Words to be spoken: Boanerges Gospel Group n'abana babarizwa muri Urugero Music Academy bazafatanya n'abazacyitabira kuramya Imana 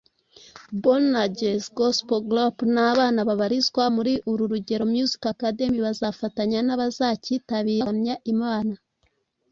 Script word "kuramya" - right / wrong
right